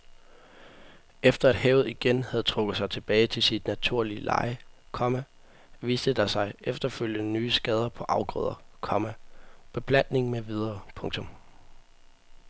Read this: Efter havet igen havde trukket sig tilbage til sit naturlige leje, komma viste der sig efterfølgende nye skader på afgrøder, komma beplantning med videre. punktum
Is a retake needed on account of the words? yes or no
no